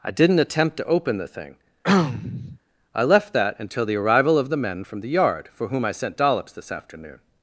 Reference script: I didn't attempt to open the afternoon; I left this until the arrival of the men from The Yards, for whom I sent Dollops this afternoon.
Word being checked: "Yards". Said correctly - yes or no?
no